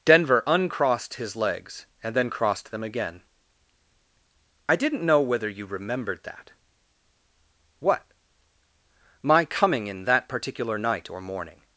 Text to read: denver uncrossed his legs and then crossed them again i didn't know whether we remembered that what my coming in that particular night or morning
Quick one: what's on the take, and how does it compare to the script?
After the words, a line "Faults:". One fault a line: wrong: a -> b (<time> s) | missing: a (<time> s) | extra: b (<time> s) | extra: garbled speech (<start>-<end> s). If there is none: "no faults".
denver uncrossed his legs and then crossed them again i didn't know whether you remembered that what my coming in that particular night or morning
Faults:
wrong: we -> you (5.5 s)